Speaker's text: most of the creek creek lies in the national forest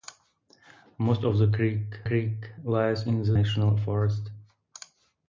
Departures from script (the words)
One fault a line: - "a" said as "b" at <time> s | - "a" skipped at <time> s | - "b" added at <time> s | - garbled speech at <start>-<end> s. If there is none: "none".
none